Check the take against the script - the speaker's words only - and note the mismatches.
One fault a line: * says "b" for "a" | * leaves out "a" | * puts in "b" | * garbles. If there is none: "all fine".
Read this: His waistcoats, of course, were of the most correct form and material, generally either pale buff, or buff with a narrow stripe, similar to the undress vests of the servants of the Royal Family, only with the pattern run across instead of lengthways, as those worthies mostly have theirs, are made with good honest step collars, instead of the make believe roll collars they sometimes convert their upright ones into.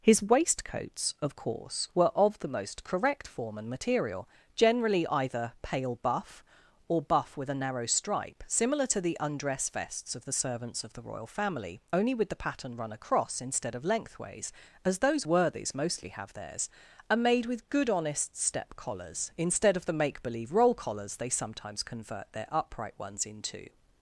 all fine